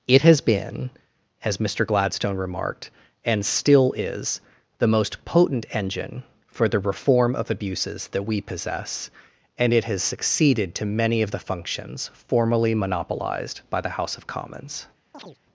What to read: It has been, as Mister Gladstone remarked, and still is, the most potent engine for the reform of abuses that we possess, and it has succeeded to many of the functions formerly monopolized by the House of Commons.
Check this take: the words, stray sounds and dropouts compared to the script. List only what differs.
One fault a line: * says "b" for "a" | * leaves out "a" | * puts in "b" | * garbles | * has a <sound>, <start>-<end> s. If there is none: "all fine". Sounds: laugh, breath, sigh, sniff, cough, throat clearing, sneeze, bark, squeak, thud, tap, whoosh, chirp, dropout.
* has a chirp, 15.1-15.4 s